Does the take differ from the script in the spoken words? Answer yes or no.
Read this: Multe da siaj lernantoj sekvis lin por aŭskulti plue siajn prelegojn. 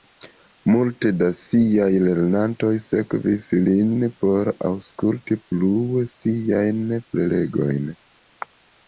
no